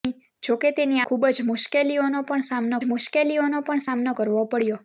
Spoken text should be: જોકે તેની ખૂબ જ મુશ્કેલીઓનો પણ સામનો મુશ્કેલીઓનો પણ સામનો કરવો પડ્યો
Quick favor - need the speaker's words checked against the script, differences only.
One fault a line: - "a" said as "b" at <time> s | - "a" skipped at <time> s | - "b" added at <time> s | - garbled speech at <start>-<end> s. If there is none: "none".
none